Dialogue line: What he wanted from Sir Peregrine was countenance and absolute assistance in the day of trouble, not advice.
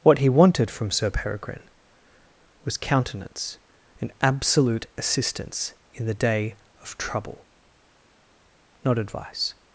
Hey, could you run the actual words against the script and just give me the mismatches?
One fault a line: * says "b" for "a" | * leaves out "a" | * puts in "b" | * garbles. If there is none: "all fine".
all fine